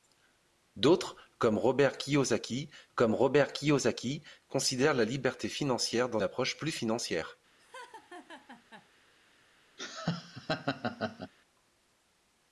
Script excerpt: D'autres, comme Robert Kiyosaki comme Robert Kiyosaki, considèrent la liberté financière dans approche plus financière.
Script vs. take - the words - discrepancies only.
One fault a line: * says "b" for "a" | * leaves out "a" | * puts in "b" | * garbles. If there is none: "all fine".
all fine